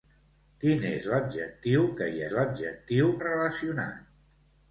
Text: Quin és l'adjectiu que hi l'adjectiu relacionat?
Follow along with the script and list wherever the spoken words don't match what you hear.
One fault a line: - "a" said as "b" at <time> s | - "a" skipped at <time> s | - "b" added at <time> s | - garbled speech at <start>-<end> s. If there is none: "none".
none